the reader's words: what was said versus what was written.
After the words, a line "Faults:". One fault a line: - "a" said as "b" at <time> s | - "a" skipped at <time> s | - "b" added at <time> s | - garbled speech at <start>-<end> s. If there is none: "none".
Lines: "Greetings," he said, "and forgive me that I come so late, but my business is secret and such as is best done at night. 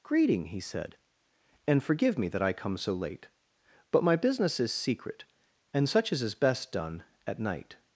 "Greeting," he said, "and forgive me that I come so late, but my business is secret and such as is best done at night.
Faults:
- "Greetings" said as "Greeting" at 0.0 s